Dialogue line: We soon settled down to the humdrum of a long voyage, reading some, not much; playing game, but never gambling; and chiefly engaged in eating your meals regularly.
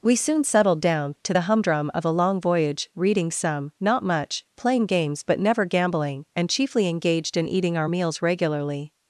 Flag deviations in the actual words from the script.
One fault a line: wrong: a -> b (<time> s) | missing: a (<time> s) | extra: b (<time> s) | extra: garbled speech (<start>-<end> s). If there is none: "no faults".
wrong: game -> games (4.9 s)
wrong: your -> our (7.8 s)